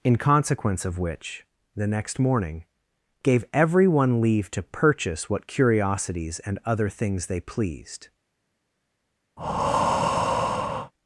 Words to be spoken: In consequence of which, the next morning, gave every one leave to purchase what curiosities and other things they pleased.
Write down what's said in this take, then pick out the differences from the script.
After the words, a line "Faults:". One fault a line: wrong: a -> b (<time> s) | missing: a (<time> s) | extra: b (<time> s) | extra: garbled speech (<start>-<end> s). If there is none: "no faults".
In consequence of which, the next morning, gave every one leave to purchase what curiosities and other things they pleased.
Faults:
no faults